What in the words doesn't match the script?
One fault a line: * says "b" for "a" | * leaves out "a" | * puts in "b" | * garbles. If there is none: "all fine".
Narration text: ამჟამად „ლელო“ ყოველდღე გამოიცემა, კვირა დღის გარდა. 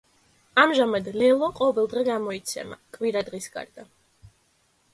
all fine